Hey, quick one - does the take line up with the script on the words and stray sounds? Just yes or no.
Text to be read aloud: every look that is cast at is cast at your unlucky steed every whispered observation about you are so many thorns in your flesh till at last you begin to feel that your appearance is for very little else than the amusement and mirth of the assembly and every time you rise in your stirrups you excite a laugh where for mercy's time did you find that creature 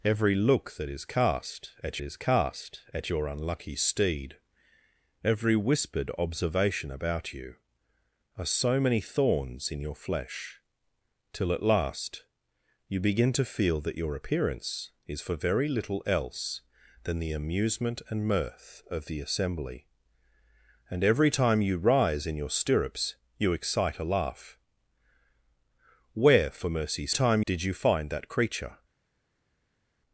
yes